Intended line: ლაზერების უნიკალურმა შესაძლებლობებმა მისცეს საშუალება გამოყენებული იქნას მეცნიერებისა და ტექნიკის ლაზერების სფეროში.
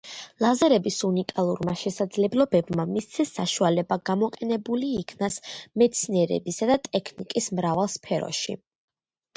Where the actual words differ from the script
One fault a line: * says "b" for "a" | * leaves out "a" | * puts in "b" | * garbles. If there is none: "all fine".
* says "მრავალ" for "ლაზერების"